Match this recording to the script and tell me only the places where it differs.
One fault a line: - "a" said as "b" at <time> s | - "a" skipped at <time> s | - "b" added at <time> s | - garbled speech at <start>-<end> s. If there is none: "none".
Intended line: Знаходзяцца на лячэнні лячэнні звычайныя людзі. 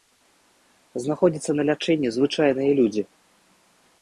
- "лячэнні" skipped at 2.1 s